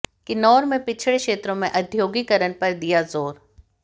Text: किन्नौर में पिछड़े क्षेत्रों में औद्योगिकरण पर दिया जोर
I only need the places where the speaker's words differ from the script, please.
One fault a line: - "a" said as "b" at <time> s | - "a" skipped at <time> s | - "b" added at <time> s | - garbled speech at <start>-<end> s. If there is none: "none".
none